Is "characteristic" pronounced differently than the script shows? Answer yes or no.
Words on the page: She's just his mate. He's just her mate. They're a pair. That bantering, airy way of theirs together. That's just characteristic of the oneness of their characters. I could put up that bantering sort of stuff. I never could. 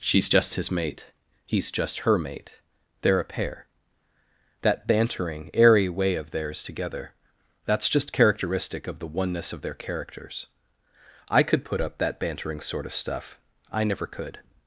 no